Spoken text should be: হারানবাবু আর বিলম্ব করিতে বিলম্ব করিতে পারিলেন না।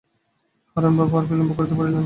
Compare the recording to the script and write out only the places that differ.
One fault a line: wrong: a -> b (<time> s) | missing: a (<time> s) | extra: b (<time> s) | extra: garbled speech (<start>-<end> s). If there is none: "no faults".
missing: বিলম্ব করিতে (1.8 s)